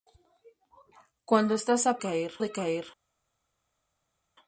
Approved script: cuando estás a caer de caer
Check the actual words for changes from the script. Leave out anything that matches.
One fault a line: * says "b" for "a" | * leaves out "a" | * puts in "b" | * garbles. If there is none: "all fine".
all fine